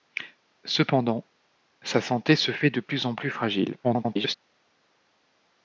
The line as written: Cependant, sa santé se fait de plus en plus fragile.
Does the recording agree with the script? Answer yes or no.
no